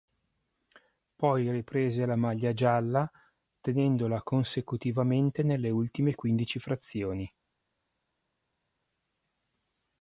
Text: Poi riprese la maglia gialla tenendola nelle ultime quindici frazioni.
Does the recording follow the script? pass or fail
fail